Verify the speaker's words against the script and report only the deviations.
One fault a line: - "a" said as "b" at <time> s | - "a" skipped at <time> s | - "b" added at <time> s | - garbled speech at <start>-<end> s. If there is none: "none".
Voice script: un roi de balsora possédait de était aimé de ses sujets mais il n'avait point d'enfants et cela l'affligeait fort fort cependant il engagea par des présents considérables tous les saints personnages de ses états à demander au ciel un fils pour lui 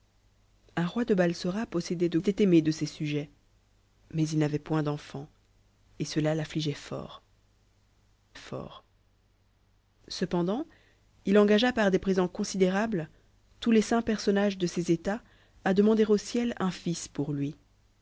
none